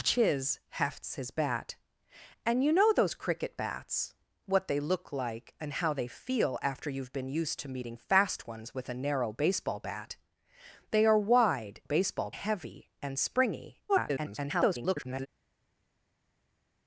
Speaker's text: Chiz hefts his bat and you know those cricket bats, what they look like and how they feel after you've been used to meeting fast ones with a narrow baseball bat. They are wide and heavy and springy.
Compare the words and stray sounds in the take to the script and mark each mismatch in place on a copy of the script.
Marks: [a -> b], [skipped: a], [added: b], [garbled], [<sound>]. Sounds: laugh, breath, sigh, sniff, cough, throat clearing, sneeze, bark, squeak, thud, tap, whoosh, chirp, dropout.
Chiz hefts his bat and you know those cricket bats, what they look like and how they feel after you've been used to meeting fast ones with a narrow baseball bat. They are wide [and -> baseball] heavy and springy. [garbled]